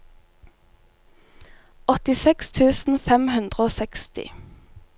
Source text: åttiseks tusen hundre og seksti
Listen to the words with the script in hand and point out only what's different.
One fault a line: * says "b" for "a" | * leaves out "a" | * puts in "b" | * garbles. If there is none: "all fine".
* puts in "fem"